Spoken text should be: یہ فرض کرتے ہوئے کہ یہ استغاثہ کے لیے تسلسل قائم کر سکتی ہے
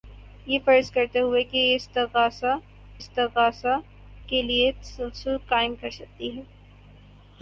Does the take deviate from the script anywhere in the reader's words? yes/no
yes